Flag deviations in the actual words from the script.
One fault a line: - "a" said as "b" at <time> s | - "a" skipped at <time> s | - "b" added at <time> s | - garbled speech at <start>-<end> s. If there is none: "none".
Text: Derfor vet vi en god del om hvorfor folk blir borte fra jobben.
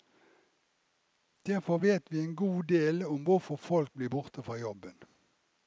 none